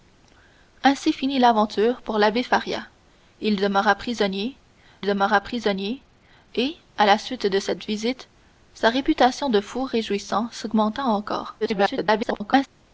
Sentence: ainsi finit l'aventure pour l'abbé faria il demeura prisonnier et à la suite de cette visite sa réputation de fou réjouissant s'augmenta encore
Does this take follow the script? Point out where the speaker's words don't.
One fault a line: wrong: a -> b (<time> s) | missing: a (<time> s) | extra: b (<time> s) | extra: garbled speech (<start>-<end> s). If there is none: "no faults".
extra: demeura prisonnier (5.0 s)
extra: garbled speech (11.6-12.7 s)